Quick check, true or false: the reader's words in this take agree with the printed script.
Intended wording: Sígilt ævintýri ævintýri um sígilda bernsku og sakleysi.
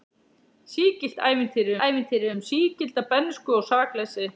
true